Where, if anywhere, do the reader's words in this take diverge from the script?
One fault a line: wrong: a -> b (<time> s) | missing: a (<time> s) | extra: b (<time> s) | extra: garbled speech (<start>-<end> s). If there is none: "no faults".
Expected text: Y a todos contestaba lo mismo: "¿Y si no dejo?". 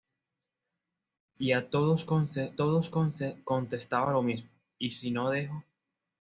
extra: todos (2.5 s)